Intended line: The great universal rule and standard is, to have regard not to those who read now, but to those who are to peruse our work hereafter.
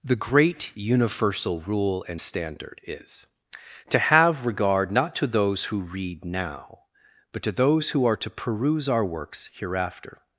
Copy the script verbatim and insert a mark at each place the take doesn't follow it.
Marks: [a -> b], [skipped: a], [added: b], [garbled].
The great universal rule and standard is, to have regard not to those who read now, but to those who are to peruse our [work -> works] hereafter.